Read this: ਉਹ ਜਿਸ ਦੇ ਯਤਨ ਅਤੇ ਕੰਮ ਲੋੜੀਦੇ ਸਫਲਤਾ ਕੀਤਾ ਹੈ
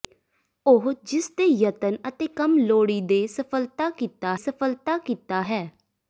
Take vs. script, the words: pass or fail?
fail